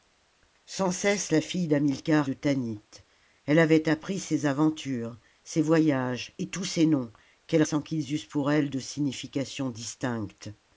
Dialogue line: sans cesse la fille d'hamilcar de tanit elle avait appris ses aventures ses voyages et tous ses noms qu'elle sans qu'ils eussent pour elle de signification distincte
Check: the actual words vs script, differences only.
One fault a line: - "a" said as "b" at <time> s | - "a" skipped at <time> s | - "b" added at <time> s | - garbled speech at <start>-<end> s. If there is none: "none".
none